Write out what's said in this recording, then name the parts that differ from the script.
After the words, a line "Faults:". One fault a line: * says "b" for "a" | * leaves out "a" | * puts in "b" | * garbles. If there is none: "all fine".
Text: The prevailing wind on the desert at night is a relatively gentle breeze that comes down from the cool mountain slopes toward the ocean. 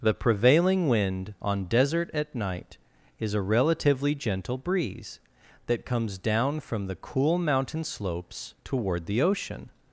The prevailing wind on desert at night is a relatively gentle breeze that comes down from the cool mountain slopes toward the ocean.
Faults:
* leaves out "the"